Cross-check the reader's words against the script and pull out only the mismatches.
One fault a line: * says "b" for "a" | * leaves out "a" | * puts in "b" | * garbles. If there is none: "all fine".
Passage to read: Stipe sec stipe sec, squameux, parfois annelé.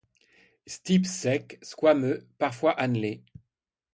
* leaves out "stipe sec"